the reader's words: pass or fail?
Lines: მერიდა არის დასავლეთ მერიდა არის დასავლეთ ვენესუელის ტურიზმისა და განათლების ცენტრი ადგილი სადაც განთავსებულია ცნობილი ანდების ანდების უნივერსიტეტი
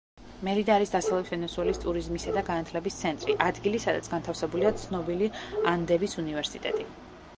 fail